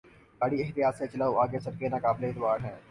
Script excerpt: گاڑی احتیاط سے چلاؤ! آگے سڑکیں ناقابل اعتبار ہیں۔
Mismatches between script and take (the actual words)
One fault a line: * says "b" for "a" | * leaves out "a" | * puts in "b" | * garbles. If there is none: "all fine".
all fine